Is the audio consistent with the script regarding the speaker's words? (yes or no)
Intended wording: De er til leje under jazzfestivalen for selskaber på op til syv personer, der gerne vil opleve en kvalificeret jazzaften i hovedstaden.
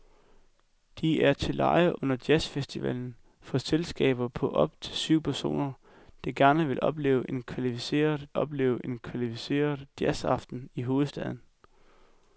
no